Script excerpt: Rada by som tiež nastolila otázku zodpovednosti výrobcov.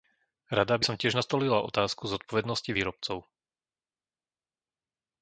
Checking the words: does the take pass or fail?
pass